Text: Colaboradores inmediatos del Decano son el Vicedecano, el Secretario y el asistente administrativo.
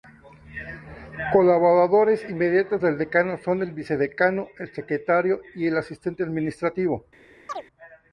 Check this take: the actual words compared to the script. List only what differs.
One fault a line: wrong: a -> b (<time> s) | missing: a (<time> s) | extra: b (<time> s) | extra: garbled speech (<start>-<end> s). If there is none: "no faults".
no faults